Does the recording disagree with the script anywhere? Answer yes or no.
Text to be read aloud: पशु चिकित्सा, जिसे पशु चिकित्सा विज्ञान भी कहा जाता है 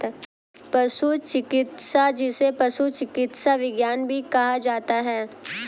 no